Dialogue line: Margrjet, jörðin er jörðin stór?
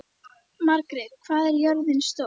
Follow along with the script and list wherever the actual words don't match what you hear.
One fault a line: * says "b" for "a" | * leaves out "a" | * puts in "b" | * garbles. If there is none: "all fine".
* says "hvað" for "jörðin"